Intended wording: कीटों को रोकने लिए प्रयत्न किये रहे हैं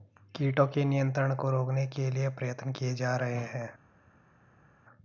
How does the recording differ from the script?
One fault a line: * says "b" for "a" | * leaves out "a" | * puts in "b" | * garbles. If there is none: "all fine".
* puts in "के नियंत्रण"
* puts in "के"
* puts in "जा"